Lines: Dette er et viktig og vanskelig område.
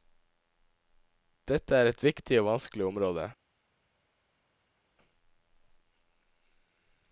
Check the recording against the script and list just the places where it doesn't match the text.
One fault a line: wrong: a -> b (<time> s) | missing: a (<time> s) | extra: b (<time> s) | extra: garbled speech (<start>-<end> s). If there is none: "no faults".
no faults